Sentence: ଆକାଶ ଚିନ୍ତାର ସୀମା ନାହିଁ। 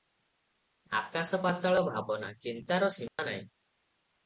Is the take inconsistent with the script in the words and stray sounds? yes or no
yes